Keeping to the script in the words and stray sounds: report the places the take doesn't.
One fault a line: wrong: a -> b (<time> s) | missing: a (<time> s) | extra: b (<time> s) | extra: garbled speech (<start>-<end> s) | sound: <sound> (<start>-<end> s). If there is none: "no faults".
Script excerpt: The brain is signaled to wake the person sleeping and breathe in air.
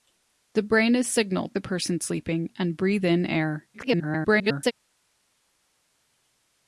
missing: to wake (1.6 s)
extra: garbled speech (3.7-4.7 s)